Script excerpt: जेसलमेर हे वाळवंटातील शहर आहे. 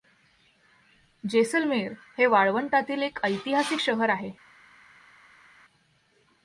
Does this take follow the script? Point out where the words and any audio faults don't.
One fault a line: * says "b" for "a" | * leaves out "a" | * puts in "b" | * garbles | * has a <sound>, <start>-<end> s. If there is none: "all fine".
* puts in "एक ऐतिहासिक"